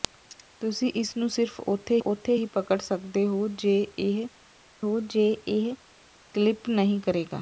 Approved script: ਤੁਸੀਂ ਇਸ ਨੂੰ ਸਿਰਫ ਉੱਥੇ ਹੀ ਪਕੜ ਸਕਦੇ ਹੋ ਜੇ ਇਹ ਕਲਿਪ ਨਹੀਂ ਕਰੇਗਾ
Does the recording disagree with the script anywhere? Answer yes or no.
yes